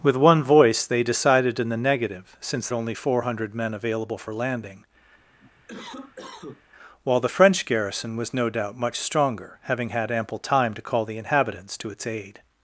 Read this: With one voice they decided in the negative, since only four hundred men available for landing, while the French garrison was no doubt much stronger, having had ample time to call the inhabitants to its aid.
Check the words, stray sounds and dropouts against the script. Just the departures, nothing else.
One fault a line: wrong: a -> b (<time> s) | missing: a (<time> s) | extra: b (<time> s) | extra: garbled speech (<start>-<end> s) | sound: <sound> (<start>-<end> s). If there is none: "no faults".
sound: cough (5.2-6.6 s)